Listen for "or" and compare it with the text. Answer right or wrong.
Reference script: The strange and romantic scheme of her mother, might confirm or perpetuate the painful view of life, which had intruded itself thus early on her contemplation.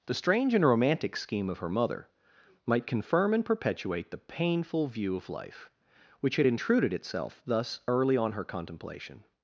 wrong